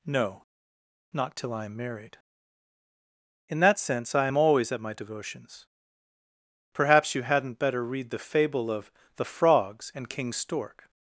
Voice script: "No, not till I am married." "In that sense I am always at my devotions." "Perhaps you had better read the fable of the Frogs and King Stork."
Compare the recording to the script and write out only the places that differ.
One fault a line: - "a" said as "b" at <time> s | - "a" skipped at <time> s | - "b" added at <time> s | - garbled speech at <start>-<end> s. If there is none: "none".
- "had" said as "hadn't" at 7.2 s